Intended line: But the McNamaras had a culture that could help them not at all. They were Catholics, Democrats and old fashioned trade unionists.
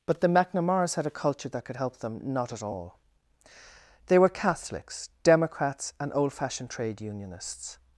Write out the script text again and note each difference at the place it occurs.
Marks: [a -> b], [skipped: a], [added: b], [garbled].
But the McNamaras had a culture that could help them not at all. They were Catholics, Democrats and old fashioned trade unionists.